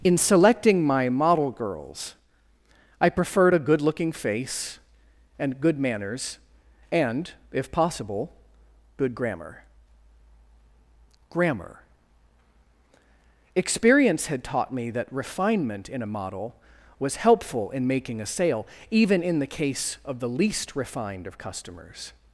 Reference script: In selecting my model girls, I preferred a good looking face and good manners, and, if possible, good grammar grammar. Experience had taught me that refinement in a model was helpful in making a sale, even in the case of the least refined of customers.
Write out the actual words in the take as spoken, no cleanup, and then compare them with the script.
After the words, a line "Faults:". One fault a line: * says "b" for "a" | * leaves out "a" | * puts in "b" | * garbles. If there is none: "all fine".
In selecting my model girls, I preferred a good looking face and good manners, and, if possible, good grammar grammar. Experience had taught me that refinement in a model was helpful in making a sale, even in the case of the least refined of customers.
Faults:
all fine